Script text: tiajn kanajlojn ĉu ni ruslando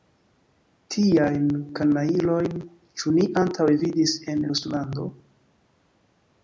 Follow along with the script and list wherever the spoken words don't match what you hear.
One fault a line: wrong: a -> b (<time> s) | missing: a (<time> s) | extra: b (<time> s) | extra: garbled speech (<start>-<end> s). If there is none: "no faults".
extra: antaŭe vidis en (3.5 s)